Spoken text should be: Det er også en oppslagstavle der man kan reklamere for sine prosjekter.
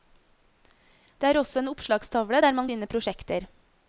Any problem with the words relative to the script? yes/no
yes